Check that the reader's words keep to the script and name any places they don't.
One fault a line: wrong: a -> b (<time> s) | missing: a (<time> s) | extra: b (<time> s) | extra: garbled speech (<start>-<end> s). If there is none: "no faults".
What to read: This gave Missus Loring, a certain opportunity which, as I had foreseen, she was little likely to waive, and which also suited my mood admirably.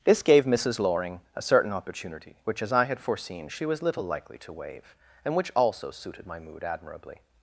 no faults